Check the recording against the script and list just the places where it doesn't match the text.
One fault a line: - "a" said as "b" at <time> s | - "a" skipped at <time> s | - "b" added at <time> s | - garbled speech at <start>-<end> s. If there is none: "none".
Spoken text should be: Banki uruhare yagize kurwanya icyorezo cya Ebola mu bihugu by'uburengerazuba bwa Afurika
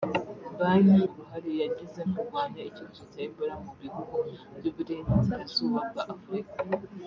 none